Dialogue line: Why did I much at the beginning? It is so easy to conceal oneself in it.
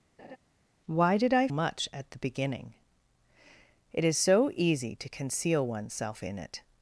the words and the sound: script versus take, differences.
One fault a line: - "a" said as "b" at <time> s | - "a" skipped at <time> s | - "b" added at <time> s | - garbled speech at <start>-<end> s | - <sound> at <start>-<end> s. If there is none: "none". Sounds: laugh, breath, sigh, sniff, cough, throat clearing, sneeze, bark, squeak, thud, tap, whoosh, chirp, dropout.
- laugh at 0.2-0.4 s